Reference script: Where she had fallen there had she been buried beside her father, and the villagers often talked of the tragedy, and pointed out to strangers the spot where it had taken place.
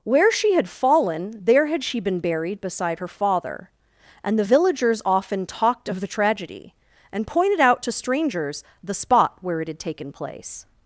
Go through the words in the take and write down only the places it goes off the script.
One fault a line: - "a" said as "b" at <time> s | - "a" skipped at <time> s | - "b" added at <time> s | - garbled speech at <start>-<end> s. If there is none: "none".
none